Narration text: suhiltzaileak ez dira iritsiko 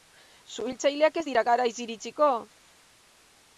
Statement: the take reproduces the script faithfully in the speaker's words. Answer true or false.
false